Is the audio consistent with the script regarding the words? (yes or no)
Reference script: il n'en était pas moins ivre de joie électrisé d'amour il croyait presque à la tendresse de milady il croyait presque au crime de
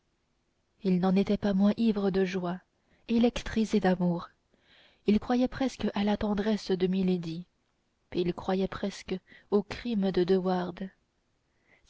yes